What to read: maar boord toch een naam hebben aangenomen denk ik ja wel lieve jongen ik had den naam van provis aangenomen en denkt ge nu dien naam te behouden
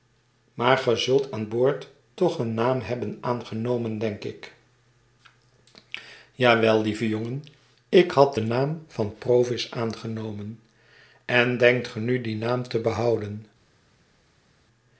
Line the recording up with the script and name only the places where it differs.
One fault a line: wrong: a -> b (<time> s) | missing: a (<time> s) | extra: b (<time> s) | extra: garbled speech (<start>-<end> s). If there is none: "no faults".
extra: ge zult aan (0.8 s)